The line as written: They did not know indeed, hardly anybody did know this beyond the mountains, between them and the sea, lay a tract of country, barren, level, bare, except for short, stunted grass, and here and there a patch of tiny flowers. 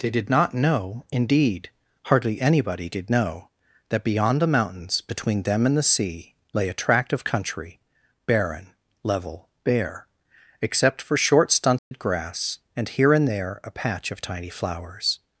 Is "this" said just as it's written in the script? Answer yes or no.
no